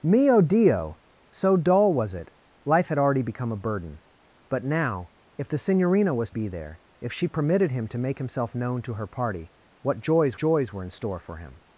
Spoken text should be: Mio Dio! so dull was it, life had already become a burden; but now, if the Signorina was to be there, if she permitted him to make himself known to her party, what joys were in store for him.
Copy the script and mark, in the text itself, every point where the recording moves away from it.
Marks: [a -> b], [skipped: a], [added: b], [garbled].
Mio Dio! so dull was it, life had already become a burden; but now, if the Signorina was [skipped: to] be there, if she permitted him to make himself known to her party, what joys [added: joys] were in store for him.